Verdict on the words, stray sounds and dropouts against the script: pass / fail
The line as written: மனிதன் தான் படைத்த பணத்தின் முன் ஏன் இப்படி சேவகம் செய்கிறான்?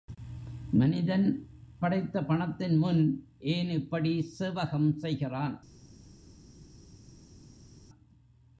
fail